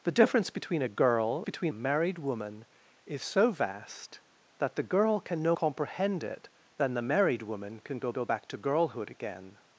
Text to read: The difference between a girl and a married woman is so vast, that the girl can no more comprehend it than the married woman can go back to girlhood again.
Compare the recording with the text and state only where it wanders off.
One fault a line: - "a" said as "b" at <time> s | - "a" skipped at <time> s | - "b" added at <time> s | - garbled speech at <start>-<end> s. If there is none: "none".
- "and" said as "between" at 1.4 s
- "more" skipped at 5.5 s
- "go" added at 8.1 s